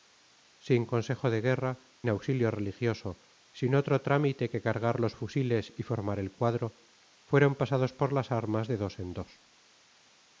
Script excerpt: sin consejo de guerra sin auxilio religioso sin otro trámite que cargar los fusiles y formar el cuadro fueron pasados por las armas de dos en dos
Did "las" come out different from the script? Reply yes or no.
no